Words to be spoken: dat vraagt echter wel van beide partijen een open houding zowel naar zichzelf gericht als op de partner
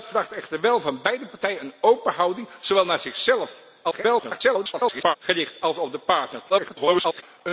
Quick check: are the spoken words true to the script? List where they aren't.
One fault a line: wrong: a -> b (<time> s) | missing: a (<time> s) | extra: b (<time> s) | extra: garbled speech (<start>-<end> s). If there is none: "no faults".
extra: garbled speech (3.8-5.2 s)
extra: garbled speech (6.5-7.2 s)